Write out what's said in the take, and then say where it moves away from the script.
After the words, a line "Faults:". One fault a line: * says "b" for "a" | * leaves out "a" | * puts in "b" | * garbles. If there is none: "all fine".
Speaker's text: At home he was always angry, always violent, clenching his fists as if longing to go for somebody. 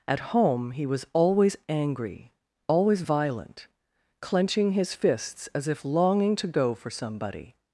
At home he was always angry, always violent, clenching his fists as if longing to go for somebody.
Faults:
all fine